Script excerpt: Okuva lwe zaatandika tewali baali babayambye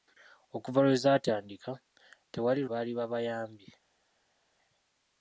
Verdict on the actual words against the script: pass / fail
pass